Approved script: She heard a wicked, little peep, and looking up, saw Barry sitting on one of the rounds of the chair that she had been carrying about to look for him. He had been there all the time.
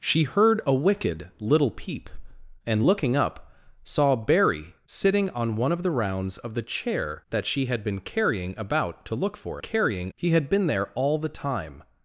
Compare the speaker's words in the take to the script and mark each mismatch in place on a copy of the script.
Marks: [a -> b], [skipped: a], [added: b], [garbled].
She heard a wicked, little peep, and looking up, saw Barry sitting on one of the rounds of the chair that she had been carrying about to look for [him. -> carrying] He had been there all the time.